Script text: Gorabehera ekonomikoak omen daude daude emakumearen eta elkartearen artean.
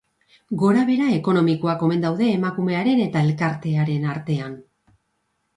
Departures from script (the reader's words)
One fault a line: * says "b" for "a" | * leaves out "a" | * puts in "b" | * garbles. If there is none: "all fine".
* leaves out "daude"